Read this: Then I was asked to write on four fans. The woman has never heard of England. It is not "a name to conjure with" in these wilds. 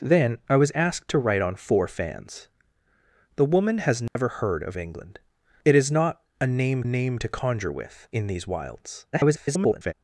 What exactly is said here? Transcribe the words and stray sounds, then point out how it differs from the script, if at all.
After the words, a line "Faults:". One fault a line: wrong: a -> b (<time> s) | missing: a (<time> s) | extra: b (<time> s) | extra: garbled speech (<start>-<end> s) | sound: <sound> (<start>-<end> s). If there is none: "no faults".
Then I was asked to write on four fans. The woman has never heard of England. It is not "a name name to conjure with" in these wilds. [garbled]
Faults:
sound: dropout (4.1-4.2 s)
extra: name (6.8 s)
extra: garbled speech (9.1-9.9 s)